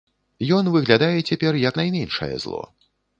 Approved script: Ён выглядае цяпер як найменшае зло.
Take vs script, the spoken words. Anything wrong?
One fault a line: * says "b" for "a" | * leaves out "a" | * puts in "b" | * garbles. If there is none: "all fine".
all fine